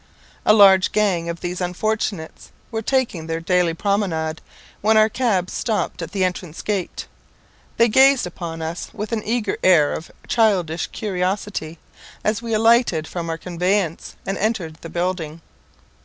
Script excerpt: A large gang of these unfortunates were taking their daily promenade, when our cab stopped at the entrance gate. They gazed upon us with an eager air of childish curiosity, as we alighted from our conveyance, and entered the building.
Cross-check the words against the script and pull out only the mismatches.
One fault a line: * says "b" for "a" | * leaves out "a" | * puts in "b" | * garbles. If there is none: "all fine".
all fine